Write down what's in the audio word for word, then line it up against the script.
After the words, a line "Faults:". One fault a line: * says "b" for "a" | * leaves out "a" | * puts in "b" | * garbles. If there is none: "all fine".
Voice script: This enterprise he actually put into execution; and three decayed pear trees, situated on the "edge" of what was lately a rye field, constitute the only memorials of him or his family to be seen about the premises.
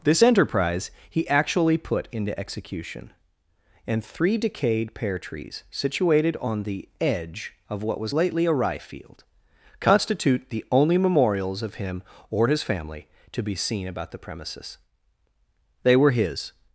This enterprise he actually put into execution; and three decayed pear trees, situated on the "edge" of what was lately a rye field, constitute the only memorials of him or his family to be seen about the premises. They were his
Faults:
* puts in "They were his"